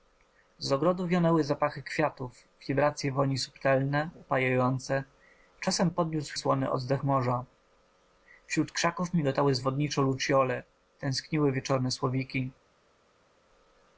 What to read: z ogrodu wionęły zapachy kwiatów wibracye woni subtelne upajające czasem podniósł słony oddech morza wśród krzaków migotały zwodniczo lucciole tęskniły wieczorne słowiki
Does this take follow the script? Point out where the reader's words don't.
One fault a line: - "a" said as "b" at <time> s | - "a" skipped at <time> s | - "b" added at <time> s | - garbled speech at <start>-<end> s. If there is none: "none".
none